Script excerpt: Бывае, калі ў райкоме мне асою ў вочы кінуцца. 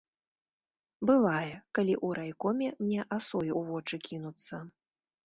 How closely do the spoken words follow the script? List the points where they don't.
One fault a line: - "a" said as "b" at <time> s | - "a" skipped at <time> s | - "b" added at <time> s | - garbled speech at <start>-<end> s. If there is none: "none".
none